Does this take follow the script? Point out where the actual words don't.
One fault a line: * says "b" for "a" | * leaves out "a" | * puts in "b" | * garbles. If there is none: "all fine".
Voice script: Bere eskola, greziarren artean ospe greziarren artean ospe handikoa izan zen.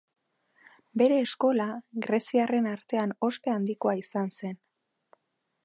* leaves out "greziarren artean ospe"